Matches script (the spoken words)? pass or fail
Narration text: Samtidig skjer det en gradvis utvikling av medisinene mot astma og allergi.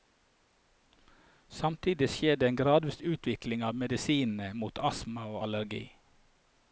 pass